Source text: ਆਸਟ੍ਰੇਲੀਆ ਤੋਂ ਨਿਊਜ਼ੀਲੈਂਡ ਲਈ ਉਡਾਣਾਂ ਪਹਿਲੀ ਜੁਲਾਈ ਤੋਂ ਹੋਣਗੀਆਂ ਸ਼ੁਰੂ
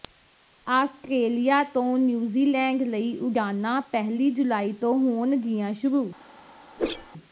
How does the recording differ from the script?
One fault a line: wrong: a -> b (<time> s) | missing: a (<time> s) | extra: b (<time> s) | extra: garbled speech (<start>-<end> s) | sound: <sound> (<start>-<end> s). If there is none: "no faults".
sound: whoosh (6.8-7.1 s)